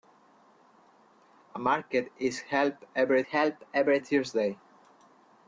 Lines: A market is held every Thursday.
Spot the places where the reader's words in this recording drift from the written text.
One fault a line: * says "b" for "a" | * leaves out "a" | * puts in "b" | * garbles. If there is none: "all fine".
* puts in "held every"